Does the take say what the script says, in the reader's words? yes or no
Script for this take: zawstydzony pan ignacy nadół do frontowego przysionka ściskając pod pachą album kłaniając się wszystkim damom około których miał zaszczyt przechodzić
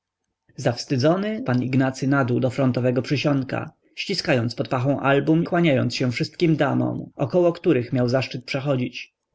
yes